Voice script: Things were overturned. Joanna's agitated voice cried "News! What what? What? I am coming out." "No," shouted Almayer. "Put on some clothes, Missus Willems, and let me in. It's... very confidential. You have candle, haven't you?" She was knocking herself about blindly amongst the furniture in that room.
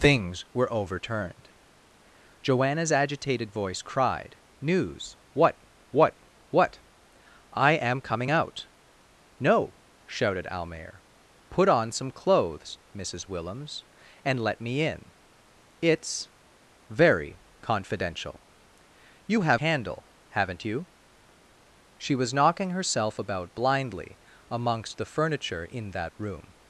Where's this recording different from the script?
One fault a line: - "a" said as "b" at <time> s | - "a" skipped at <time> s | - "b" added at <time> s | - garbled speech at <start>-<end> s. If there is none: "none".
none